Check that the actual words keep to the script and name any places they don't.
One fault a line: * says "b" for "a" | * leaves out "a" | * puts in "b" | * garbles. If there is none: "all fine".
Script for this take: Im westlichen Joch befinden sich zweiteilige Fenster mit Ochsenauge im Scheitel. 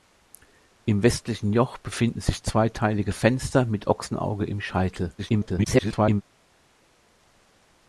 * garbles